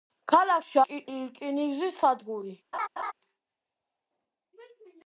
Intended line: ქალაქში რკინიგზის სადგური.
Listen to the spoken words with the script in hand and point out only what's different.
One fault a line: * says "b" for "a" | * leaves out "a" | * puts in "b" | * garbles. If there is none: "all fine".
all fine